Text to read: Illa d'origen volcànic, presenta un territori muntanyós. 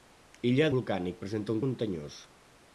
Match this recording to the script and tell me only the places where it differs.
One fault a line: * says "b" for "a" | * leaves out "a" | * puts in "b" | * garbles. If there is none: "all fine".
* leaves out "d'origen"
* leaves out "territori"